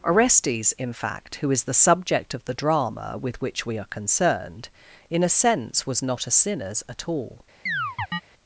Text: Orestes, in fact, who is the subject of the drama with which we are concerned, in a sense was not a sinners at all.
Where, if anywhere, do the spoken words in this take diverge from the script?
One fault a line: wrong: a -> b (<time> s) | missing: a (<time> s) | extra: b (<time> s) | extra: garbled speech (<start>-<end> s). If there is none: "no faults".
no faults